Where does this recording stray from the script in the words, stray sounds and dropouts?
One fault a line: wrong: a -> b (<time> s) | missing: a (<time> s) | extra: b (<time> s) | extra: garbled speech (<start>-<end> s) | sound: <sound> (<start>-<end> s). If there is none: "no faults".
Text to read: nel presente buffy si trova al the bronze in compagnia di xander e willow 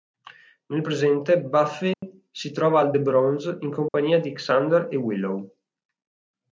sound: dropout (1.9-2.0 s)
sound: dropout (3.9-3.9 s)